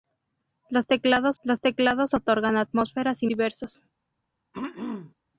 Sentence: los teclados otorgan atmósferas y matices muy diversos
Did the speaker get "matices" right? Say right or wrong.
wrong